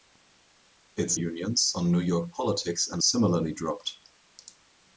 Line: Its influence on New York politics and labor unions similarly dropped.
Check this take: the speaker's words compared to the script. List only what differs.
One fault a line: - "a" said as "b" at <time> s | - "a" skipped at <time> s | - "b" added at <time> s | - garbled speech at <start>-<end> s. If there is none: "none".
- "influence" said as "unions" at 1.1 s
- "labor unions" skipped at 3.0 s